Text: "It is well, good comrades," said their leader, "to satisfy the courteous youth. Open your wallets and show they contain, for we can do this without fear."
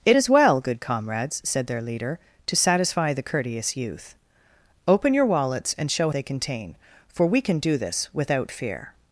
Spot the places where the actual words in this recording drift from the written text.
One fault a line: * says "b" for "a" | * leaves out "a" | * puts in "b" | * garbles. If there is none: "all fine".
all fine